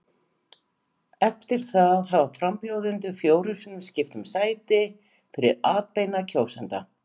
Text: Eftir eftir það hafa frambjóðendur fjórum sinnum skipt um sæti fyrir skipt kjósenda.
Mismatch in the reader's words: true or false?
true